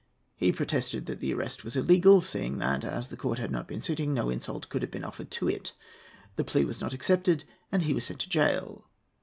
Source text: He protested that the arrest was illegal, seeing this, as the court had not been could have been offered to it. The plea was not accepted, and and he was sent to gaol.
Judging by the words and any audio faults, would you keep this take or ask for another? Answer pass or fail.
fail